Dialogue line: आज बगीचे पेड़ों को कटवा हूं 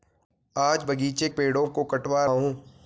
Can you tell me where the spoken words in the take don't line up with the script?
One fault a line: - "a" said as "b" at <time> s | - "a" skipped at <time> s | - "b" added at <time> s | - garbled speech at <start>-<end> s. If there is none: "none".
none